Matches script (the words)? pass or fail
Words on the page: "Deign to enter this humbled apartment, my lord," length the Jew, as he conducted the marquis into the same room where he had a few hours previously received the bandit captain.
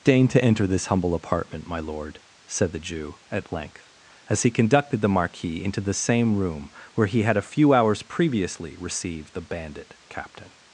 fail